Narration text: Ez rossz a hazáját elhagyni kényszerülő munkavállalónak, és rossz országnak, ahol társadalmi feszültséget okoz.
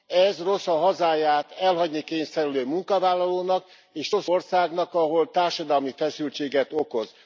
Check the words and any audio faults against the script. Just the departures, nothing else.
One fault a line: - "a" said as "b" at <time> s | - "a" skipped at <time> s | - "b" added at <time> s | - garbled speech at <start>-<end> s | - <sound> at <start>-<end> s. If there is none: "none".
none